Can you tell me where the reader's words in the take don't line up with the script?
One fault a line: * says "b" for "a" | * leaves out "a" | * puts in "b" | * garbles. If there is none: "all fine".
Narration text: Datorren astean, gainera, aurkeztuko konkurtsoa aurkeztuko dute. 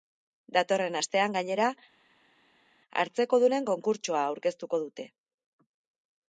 * says "hartzekodunen" for "aurkeztuko"